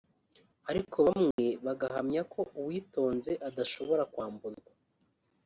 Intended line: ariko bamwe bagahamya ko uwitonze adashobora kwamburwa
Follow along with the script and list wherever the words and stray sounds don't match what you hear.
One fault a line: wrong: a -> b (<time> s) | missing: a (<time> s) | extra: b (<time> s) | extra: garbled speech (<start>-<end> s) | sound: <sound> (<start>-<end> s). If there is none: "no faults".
sound: dropout (1.3-1.4 s)